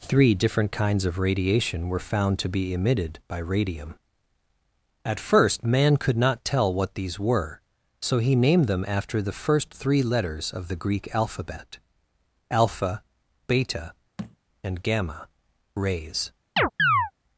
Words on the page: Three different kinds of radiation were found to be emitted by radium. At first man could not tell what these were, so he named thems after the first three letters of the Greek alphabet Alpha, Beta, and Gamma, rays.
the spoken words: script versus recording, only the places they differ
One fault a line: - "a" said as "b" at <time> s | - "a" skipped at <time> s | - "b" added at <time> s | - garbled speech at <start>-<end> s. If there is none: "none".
- "thems" said as "them" at 8.7 s